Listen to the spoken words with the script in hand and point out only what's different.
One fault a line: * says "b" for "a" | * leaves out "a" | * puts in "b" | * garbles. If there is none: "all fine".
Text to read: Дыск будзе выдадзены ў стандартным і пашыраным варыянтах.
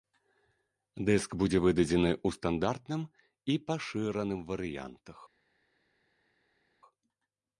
all fine